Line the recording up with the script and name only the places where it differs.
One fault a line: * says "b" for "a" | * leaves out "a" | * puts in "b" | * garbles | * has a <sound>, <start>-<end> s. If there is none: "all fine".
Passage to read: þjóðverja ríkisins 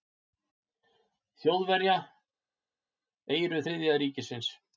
* puts in "eyru þriðja"